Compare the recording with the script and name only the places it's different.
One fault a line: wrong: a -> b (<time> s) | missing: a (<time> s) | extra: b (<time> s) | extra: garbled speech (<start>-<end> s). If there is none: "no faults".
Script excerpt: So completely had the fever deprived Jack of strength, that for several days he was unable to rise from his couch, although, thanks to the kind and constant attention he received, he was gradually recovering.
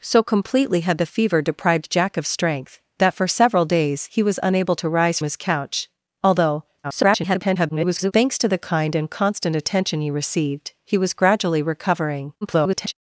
missing: from (5.2 s)
extra: garbled speech (6.8-8.1 s)
extra: garbled speech (12.4-12.9 s)